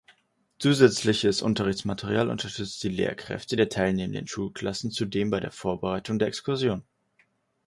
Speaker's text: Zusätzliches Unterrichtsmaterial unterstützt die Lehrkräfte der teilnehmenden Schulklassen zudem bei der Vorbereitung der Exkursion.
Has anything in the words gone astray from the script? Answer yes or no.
no